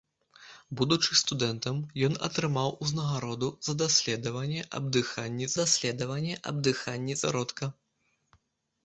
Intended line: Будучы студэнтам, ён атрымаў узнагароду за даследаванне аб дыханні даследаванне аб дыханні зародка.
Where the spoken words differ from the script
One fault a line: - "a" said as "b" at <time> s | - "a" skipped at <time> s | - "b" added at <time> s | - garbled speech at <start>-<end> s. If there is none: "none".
none